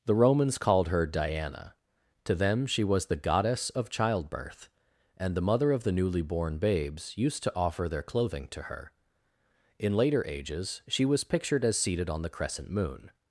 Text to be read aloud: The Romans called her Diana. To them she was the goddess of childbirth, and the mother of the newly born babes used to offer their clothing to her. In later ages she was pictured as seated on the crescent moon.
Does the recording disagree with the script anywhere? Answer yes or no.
no